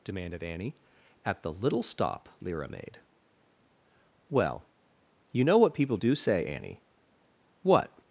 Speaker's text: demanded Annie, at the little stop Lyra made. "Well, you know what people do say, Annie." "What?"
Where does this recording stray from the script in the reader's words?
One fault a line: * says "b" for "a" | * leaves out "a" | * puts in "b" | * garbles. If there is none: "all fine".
all fine